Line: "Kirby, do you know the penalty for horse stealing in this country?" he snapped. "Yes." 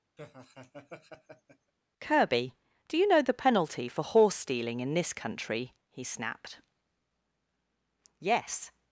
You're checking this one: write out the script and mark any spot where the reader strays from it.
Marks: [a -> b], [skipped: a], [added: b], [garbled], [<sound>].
[laugh] "Kirby, do you know the penalty for horse stealing in this country?" he snapped. "Yes."